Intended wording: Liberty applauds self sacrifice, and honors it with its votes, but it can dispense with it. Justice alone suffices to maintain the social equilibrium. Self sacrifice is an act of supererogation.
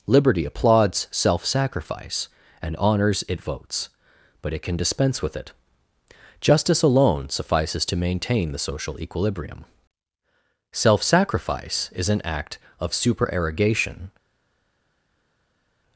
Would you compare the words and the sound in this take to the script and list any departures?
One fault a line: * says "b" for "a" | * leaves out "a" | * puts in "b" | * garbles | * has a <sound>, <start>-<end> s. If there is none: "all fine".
* leaves out "with its"